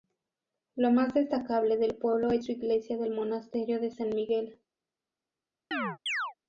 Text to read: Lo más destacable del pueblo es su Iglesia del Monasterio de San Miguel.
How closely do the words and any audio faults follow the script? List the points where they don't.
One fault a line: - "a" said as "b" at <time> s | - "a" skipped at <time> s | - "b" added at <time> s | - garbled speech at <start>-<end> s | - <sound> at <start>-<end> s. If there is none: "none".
- chirp at 5.7-6.3 s